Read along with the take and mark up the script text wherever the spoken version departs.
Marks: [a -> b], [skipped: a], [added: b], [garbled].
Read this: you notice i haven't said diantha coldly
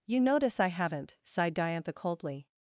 you notice i haven't [said -> sighed] diantha coldly